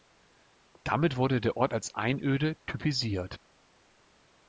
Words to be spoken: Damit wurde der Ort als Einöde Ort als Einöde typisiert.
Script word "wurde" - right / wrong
right